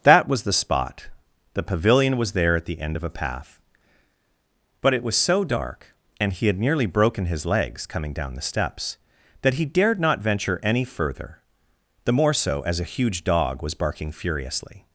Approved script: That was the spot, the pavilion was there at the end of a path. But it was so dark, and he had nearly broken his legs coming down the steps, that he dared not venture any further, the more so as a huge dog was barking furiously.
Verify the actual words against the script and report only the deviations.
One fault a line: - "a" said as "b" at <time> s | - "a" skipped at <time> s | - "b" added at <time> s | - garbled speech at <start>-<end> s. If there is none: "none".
none